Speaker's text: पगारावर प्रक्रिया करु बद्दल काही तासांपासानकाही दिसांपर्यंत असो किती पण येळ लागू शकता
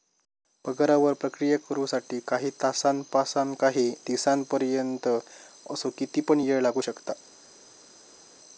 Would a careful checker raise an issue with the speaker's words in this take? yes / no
yes